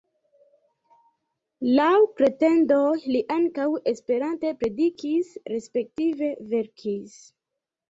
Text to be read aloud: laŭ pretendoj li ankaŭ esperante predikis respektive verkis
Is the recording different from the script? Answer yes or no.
no